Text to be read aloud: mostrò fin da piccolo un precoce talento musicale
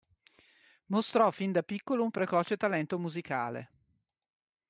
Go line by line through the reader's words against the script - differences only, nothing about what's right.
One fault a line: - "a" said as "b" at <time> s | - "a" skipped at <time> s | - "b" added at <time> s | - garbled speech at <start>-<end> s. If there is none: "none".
none